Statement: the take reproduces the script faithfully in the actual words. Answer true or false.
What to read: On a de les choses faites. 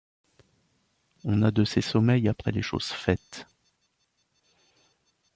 false